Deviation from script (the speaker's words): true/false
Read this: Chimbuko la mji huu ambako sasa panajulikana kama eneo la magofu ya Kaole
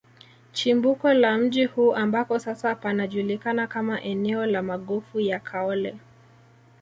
false